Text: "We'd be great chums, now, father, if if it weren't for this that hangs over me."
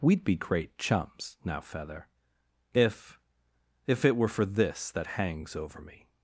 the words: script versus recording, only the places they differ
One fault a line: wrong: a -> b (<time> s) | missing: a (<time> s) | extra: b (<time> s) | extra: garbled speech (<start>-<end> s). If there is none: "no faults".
wrong: father -> feather (1.6 s)
wrong: weren't -> were (4.2 s)